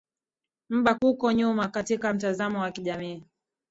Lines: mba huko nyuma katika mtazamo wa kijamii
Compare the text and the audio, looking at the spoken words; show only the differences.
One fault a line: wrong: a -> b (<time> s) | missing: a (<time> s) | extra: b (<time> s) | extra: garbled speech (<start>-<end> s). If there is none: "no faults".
no faults